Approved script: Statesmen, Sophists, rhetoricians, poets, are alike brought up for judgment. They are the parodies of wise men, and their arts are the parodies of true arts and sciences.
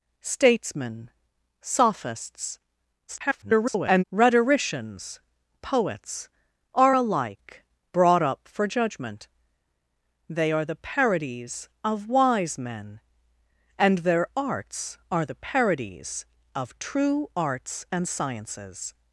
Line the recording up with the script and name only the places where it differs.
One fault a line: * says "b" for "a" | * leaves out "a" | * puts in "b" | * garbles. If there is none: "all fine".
* garbles